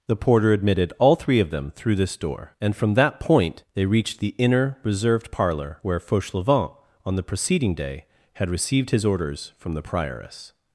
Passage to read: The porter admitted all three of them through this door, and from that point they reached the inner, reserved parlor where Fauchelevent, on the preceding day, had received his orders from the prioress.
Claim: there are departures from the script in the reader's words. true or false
false